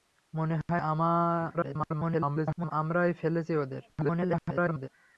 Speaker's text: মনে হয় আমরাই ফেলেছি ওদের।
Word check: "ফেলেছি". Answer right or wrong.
right